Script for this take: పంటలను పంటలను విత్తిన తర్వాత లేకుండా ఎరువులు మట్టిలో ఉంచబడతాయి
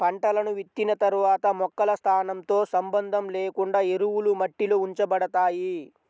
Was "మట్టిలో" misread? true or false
false